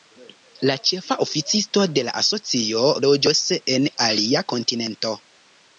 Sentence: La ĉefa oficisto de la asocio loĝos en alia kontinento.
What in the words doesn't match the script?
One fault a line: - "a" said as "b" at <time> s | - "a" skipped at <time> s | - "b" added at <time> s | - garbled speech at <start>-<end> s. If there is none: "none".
none